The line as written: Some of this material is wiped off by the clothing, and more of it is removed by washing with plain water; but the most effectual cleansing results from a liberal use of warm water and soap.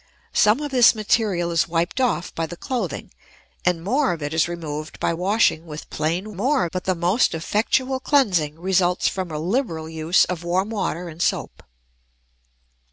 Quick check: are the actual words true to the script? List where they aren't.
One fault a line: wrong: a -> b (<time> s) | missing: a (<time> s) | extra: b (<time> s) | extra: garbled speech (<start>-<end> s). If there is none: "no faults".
wrong: water -> more (6.4 s)